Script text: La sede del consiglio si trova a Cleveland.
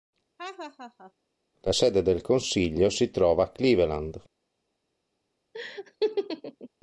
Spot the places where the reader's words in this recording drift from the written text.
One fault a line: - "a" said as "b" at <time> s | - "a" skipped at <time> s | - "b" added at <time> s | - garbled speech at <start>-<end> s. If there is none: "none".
none